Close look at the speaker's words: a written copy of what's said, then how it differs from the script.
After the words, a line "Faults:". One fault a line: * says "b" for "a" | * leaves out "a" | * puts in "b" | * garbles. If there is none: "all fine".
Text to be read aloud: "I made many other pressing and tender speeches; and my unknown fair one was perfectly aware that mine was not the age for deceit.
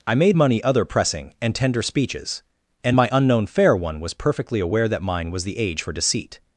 "I made money other pressing and tender speeches; and my unknown fair one was perfectly aware that mine was the age for deceit.
Faults:
* says "money" for "many"
* leaves out "not"